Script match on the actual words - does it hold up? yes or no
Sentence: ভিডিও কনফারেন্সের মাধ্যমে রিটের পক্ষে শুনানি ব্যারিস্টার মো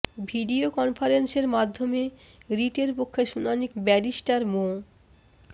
yes